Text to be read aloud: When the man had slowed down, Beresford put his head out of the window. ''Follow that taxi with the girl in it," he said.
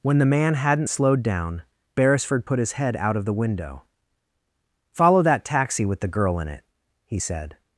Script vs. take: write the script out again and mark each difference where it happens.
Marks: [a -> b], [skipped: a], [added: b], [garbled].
When the man [had -> hadn't] slowed down, Beresford put his head out of the window. ''Follow that taxi with the girl in it," he said.